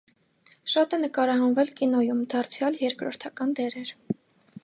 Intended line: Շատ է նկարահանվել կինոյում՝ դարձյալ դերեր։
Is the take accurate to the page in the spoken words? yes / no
no